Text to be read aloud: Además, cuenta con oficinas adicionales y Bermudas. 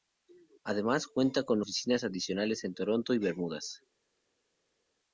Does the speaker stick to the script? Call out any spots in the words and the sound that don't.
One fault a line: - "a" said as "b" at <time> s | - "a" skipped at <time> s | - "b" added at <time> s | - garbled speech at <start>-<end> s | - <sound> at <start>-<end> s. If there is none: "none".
- "en Toronto" added at 2.6 s